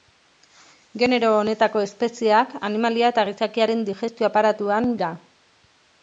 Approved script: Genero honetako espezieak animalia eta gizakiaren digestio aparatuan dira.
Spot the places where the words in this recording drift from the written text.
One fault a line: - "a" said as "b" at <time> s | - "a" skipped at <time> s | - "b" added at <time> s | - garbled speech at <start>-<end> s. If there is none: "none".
none